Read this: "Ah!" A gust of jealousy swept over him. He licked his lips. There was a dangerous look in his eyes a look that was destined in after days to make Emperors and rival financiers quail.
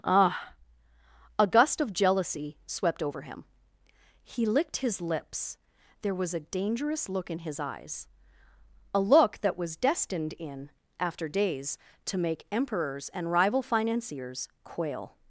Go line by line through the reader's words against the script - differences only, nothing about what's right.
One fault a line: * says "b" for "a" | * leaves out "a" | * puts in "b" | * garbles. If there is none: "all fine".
all fine